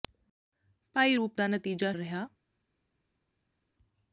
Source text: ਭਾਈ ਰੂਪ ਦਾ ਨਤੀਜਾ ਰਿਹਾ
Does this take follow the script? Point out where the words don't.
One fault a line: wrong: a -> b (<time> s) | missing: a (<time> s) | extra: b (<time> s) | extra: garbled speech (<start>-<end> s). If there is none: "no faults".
no faults